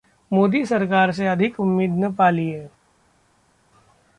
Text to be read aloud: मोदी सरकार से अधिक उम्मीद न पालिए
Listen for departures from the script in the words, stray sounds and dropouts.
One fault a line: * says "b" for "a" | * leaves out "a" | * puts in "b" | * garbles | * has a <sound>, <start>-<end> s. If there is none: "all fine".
all fine